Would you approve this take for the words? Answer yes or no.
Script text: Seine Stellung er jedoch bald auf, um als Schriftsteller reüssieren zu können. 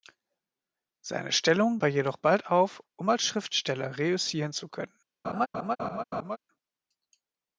yes